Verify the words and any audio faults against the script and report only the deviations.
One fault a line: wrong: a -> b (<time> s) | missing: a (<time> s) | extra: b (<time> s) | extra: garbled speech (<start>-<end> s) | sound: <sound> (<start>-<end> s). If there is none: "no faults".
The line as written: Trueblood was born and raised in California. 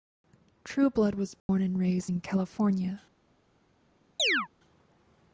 sound: dropout (1.4-1.5 s)
sound: chirp (4.2-4.5 s)